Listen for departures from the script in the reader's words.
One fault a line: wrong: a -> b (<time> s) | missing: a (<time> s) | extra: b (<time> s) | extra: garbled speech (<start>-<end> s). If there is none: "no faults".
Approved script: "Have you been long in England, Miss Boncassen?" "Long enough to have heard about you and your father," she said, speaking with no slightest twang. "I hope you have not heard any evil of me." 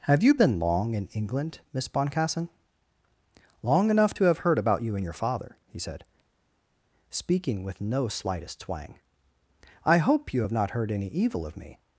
wrong: she -> he (5.7 s)